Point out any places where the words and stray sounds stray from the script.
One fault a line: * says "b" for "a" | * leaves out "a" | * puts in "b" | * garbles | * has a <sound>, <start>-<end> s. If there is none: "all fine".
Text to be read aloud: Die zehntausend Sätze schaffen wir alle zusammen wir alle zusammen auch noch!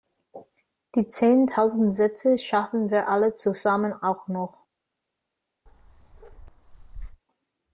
* leaves out "wir alle zusammen"
* has a bark, 5.7-7.2 s